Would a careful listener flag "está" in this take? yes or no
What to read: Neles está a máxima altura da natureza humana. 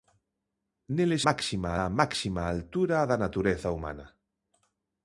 yes